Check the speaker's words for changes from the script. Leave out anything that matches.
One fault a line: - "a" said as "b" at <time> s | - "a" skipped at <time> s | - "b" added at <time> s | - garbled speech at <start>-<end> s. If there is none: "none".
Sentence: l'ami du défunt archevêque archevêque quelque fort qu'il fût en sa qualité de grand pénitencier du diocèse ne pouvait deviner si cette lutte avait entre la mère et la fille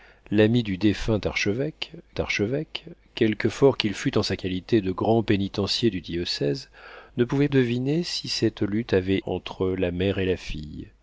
none